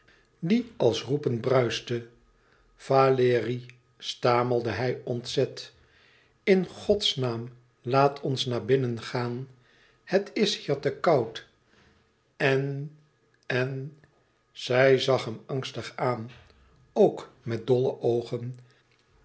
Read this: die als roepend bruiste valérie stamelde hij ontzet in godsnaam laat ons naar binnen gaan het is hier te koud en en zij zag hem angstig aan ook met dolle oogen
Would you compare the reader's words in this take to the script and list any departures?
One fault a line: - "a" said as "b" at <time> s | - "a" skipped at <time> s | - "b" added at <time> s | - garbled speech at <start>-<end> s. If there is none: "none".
none